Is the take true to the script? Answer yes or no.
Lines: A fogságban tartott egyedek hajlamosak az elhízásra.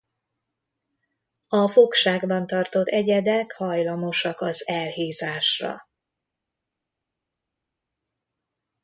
yes